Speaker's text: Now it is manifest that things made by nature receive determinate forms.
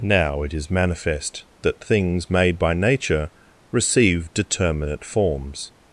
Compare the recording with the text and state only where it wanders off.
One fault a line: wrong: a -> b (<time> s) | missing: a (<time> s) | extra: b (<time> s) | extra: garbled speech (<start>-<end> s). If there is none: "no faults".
no faults